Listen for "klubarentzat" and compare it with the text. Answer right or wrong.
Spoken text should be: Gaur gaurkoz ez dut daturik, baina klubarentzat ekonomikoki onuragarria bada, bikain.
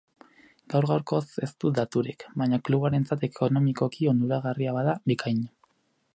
right